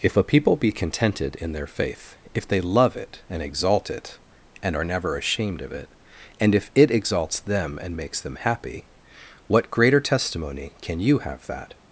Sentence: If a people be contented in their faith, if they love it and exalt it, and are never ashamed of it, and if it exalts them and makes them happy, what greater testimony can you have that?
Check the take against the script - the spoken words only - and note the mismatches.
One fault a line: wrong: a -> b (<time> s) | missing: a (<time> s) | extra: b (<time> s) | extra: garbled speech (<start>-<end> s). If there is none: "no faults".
no faults